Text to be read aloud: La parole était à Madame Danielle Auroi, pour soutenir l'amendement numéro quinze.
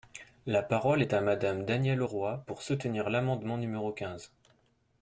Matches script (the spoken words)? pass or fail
fail